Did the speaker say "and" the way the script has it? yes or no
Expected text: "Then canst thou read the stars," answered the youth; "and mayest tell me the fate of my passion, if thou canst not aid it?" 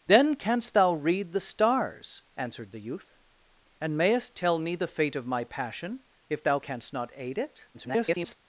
yes